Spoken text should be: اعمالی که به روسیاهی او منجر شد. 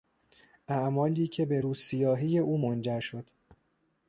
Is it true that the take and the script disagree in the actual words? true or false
false